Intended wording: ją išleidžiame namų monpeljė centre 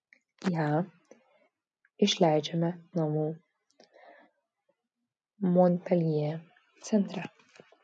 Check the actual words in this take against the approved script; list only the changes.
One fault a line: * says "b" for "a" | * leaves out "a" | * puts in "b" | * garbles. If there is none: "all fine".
all fine